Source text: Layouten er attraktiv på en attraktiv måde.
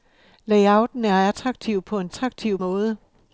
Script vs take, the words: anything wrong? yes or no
no